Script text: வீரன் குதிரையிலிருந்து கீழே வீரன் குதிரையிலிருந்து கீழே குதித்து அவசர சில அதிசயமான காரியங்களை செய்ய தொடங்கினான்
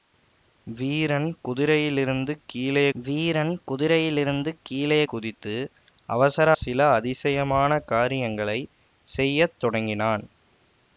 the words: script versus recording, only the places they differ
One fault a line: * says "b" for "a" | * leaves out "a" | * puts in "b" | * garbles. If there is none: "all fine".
all fine